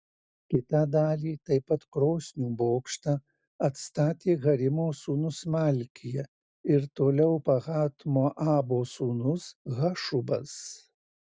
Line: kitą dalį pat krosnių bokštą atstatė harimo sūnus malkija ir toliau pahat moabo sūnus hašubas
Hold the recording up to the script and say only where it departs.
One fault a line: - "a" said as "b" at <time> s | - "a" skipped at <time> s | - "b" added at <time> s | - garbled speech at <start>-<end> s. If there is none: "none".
- "taip" added at 1.5 s